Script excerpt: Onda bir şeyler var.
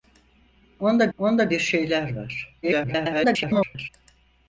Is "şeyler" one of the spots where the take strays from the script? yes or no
no